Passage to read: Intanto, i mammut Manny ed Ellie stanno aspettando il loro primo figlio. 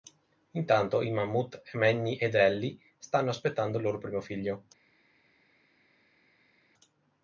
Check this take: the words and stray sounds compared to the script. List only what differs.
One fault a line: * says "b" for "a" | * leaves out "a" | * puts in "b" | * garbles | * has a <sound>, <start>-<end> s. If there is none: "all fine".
all fine